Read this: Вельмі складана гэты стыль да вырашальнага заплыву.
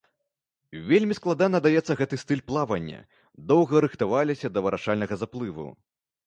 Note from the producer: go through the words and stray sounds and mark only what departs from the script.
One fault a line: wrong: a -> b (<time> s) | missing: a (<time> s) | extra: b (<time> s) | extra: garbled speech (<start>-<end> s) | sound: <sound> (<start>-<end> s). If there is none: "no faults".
extra: даецца (1.6 s)
extra: плавання доўга рыхтаваліся (2.5 s)